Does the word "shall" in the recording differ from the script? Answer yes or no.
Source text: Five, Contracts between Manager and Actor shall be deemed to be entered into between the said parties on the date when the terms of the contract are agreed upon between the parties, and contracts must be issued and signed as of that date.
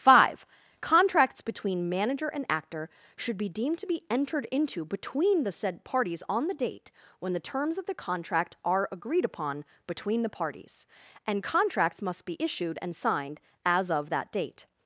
yes